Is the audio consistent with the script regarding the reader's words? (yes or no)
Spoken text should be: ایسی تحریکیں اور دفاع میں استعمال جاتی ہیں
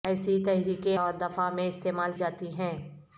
yes